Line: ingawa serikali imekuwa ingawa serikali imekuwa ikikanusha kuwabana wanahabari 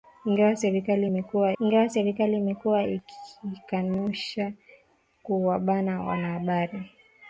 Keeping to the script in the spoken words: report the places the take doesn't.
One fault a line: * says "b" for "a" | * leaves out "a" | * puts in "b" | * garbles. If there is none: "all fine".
all fine